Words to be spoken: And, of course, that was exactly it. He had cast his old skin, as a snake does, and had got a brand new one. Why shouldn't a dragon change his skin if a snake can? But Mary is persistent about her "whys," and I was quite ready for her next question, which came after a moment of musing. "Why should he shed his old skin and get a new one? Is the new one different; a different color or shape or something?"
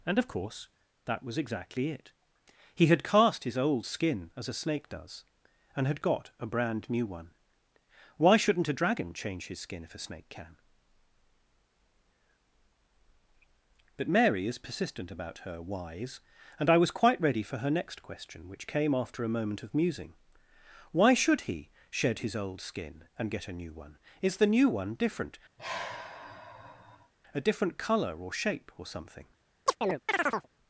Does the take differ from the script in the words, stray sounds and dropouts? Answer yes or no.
yes